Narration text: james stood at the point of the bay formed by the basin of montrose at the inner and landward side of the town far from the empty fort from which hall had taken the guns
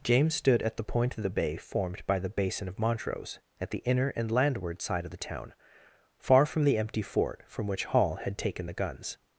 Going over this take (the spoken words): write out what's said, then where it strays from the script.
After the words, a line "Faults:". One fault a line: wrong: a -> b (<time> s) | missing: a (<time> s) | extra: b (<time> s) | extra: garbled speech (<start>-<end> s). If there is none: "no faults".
james stood at the point of the bay formed by the basin of montrose at the inner and landward side of the town far from the empty fort from which hall had taken the guns
Faults:
no faults